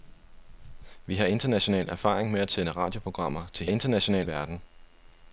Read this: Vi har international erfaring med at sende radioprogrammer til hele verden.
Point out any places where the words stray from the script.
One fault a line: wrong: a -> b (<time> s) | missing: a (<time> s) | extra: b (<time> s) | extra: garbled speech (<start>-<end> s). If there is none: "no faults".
wrong: hele -> international (3.7 s)